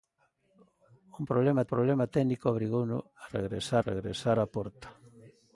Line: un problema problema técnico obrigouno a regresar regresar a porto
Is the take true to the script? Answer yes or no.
yes